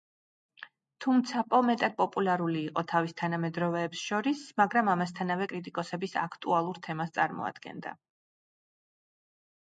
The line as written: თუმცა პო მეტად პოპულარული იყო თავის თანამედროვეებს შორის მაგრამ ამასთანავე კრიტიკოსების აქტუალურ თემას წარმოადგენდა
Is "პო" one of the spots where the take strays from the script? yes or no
no